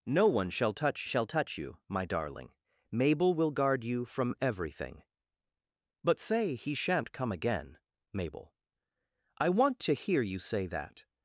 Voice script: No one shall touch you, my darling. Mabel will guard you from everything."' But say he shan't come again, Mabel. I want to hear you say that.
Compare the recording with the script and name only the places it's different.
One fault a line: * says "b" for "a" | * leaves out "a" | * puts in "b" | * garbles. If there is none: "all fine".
* puts in "shall touch"